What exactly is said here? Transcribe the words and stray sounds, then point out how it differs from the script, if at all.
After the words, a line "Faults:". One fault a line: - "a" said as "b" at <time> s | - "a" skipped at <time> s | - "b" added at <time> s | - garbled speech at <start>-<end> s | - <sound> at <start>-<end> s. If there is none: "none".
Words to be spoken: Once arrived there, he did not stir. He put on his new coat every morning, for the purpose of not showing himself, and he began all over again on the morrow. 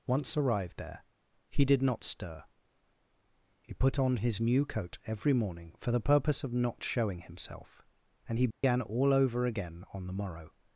Once arrived there, he did not stir. He put on his new coat every morning, for the purpose of not showing himself, and he began all over again on the morrow.
Faults:
- dropout at 8.5-8.6 s